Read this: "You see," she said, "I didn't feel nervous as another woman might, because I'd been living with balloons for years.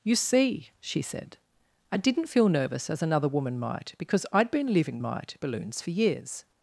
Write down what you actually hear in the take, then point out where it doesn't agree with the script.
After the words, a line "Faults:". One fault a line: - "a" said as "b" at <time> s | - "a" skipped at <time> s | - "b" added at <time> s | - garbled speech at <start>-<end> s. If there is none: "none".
"You see," she said, "I didn't feel nervous as another woman might, because I'd been living might balloons for years.
Faults:
- "with" said as "might" at 5.0 s